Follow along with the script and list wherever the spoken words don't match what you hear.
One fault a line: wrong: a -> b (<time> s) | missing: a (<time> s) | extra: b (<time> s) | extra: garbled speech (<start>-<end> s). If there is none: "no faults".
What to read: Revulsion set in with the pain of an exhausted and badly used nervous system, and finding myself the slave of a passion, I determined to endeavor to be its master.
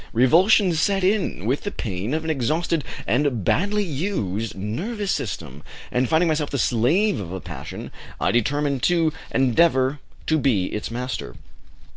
no faults